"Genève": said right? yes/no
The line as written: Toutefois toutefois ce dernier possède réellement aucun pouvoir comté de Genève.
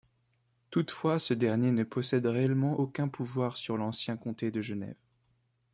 yes